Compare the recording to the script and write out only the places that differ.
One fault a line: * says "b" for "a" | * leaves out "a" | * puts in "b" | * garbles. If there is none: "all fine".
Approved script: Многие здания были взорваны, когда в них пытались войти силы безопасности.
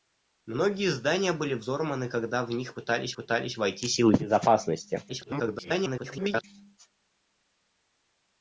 * puts in "пытались"
* garbles